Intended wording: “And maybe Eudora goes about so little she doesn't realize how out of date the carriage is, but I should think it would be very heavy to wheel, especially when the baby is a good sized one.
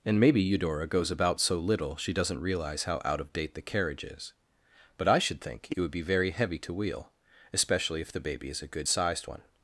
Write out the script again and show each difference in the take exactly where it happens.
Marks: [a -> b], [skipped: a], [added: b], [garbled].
“And maybe Eudora goes about so little she doesn't realize how out of date the carriage is, but I should think it would be very heavy to wheel, especially [when -> if] the baby is a good sized one.